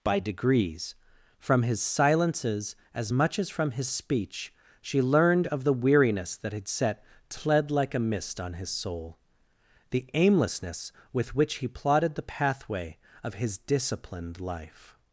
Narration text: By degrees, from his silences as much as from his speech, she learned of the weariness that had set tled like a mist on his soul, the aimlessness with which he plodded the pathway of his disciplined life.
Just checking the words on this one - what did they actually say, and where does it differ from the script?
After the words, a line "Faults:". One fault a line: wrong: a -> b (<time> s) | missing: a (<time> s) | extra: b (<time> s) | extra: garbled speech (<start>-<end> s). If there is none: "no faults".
By degrees, from his silences as much as from his speech, she learned of the weariness that had set tled like a mist on his soul, the aimlessness with which he plodded the pathway of his disciplined life.
Faults:
no faults